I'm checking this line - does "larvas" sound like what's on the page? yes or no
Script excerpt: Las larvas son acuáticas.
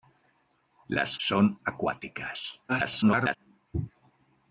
no